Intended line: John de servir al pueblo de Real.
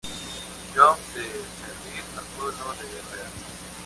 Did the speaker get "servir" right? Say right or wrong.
right